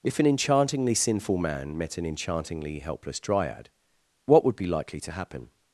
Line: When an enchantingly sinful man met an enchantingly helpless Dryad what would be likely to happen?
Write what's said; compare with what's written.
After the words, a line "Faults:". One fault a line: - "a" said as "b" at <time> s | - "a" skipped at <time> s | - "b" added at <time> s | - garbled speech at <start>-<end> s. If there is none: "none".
If an enchantingly sinful man met an enchantingly helpless Dryad what would be likely to happen?
Faults:
- "When" said as "If" at 0.0 s